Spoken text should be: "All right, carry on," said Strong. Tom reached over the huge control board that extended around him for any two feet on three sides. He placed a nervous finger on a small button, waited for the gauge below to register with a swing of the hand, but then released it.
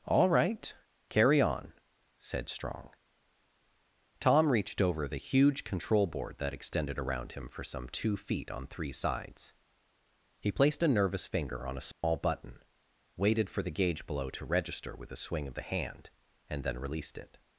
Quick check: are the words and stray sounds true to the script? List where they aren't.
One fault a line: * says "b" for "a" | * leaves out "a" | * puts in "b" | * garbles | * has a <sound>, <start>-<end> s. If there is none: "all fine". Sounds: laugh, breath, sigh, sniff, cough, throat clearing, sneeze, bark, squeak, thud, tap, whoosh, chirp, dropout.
* says "some" for "any"
* has a dropout, 11.9-12.0 s
* says "and" for "but"